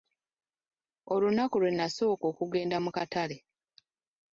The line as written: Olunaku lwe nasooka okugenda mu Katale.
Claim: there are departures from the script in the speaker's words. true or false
false